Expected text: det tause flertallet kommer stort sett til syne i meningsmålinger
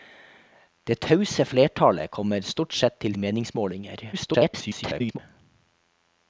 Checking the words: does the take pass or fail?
fail